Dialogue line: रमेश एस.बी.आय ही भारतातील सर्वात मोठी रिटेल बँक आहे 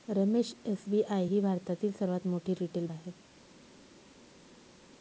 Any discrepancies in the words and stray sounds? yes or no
yes